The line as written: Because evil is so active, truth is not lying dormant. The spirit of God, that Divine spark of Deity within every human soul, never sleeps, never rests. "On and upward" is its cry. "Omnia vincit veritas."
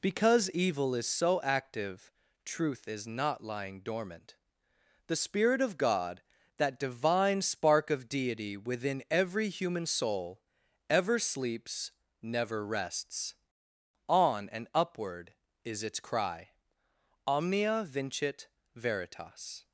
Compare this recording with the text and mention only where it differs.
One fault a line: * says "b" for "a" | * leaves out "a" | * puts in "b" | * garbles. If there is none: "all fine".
* says "ever" for "never"